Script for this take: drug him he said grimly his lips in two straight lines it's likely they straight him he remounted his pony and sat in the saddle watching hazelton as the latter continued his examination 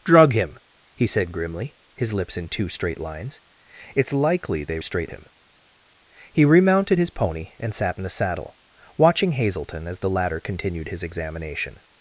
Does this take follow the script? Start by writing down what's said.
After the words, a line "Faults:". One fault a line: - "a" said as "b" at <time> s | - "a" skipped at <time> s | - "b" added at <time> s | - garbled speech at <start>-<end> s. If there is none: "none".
drug him he said grimly his lips in two straight lines it's likely they straight him he remounted his pony and sat in the saddle watching hazelton as the latter continued his examination
Faults:
none